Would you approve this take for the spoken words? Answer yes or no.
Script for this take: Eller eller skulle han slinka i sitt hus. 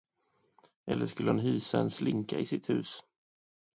no